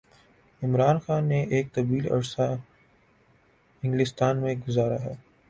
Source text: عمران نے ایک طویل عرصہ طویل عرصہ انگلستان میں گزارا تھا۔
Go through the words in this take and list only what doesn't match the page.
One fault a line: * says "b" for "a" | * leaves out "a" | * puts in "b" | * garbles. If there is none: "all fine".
* puts in "خان"
* leaves out "طویل عرصہ"
* says "ہے" for "تھا"